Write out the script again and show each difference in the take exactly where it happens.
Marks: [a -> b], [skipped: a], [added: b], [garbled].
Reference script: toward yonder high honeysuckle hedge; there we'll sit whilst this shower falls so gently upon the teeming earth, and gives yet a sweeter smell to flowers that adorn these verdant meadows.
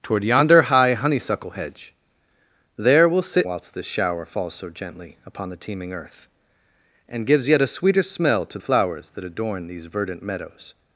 toward yonder high honeysuckle hedge; there we'll sit whilst this shower falls so gently upon the teeming earth, and gives yet a sweeter smell to flowers that adorn these verdant meadows.